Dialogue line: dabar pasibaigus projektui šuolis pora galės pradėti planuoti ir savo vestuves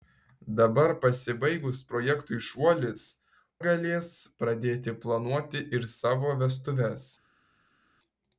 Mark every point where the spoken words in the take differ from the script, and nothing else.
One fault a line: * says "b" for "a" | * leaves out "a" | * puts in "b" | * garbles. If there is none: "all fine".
* leaves out "pora"